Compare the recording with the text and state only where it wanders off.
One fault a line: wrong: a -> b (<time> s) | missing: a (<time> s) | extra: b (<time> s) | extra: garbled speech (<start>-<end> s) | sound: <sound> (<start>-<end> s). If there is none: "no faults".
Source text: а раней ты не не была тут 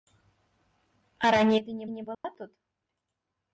sound: dropout (2.1-2.2 s)